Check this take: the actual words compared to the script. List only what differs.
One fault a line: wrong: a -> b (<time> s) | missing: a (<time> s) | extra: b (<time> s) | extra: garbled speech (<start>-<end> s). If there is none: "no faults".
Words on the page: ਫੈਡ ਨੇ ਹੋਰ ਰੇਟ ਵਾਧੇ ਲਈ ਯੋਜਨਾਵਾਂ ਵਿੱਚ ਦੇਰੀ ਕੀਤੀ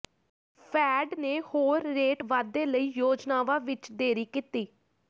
no faults